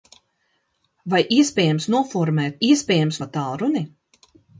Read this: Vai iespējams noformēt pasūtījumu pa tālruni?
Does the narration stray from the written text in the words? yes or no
yes